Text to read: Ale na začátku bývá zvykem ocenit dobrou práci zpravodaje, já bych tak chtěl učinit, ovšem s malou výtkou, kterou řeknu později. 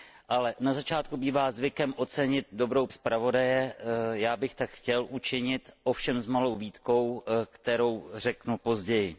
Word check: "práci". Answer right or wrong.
wrong